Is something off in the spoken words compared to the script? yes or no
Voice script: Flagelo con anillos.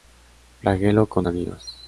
no